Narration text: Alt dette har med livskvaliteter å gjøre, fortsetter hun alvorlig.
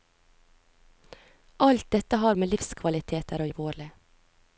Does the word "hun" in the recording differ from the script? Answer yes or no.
yes